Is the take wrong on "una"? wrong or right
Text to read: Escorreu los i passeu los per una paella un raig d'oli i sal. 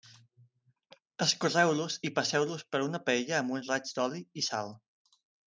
right